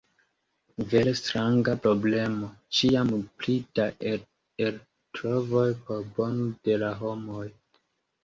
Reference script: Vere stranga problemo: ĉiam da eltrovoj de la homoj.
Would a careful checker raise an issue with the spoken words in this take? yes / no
yes